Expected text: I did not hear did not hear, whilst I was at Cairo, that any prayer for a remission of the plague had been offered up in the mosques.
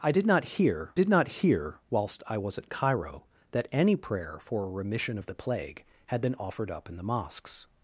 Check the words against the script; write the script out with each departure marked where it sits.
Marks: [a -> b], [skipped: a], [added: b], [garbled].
I did not hear did not hear, whilst I was at Cairo, that any prayer for a remission of the plague had been offered up in the mosques.